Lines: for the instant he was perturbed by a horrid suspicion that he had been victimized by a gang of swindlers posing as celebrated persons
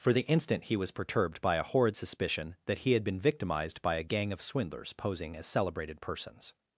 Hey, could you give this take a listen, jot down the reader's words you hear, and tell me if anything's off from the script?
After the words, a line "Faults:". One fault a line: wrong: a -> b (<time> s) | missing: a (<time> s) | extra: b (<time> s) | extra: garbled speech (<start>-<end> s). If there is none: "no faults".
for the instant he was perturbed by a horrid suspicion that he had been victimized by a gang of swindlers posing as celebrated persons
Faults:
no faults